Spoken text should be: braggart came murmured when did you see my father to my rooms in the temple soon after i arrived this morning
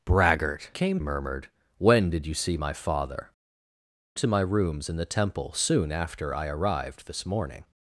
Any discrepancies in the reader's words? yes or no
no